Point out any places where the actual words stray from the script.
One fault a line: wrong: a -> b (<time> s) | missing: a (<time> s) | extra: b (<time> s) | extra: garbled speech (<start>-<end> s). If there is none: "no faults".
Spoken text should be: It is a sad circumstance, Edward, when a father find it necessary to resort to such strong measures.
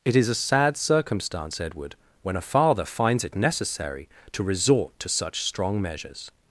wrong: find -> finds (2.9 s)